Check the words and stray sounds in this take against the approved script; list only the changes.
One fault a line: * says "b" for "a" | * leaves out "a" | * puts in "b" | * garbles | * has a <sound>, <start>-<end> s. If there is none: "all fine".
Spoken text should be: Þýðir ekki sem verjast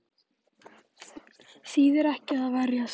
* says "að" for "sem"